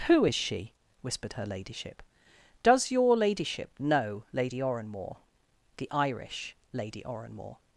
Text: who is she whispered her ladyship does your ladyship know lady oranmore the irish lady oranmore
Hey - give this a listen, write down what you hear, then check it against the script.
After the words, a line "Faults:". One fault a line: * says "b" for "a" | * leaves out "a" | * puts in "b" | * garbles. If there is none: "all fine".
who is she whispered her ladyship does your ladyship know lady oranmore the irish lady oranmore
Faults:
all fine